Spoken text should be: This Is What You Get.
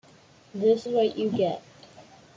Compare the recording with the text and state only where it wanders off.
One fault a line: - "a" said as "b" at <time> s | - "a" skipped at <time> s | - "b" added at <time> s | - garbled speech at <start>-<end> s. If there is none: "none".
- "Is" skipped at 0.9 s